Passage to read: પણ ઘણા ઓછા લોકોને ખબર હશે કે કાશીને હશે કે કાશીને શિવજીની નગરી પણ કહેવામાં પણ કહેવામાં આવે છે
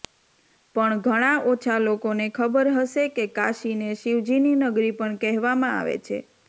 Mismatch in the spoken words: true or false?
true